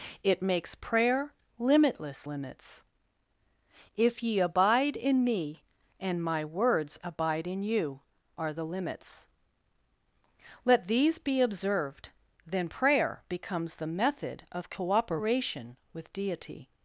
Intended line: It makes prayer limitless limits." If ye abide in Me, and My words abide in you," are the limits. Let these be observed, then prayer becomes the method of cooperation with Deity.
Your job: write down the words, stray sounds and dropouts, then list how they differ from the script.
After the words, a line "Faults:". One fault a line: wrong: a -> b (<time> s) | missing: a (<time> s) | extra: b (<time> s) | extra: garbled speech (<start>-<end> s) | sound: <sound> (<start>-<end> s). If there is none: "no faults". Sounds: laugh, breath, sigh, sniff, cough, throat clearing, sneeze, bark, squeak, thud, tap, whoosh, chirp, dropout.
It makes prayer limitless limits." If ye abide in Me, and My words abide in you," are the limits. Let these be observed, then prayer becomes the method of cooperation with Deity.
Faults:
no faults